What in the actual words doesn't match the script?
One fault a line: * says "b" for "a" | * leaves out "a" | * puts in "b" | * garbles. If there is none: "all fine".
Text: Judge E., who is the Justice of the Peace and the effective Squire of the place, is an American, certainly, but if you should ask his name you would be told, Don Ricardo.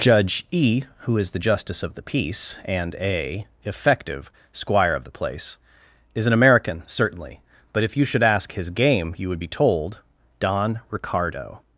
* says "a" for "the"
* says "game" for "name"